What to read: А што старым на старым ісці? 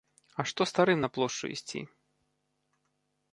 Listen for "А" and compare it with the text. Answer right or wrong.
right